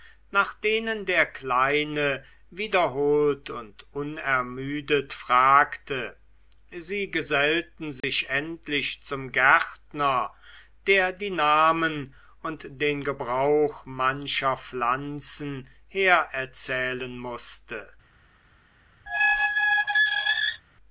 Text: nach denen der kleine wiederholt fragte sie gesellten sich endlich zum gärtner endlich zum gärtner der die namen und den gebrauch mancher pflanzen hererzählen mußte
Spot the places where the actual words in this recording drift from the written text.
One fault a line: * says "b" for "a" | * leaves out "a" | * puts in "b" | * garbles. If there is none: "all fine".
* puts in "und unermüdet"
* leaves out "endlich zum gärtner"